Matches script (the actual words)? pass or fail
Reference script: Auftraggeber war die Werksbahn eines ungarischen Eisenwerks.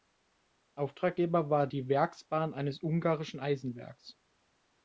pass